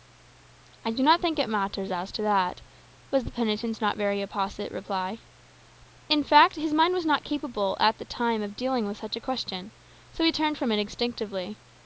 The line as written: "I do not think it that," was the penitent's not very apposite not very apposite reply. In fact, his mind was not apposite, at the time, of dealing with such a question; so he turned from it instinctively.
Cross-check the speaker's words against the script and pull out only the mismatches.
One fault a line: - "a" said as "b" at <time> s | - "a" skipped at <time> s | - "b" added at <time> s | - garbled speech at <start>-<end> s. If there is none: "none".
- "matters as to" added at 1.5 s
- "not very apposite" skipped at 4.7 s
- "apposite" said as "capable" at 7.2 s